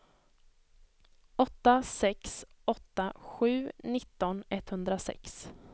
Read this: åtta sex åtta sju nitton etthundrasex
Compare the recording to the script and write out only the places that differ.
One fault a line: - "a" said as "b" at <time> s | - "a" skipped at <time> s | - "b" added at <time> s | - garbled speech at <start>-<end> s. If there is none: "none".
none